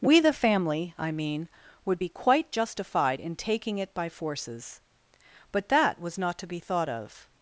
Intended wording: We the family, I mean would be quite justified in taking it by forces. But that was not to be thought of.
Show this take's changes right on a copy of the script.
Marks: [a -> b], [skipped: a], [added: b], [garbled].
We the family, I mean would be quite justified in taking it by forces. But that was not to be thought of.